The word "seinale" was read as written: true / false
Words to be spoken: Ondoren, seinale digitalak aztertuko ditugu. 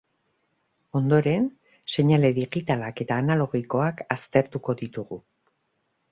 true